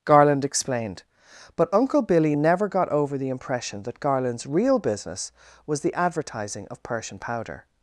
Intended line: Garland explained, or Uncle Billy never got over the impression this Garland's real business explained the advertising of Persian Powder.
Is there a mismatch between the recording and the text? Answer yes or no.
yes